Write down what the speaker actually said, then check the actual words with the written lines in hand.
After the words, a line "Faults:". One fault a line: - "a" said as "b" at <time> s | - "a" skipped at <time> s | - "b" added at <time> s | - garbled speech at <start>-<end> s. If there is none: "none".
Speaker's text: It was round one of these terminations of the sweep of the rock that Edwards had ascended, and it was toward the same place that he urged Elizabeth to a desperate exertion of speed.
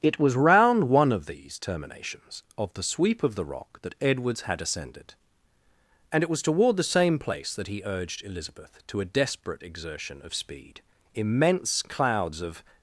It was round one of these terminations of the sweep of the rock that Edwards had ascended, and it was toward the same place that he urged Elizabeth to a desperate exertion of speed. Immense clouds of
Faults:
- "Immense clouds of" added at 11.1 s